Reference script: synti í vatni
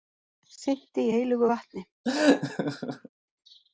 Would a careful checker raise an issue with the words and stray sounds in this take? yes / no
yes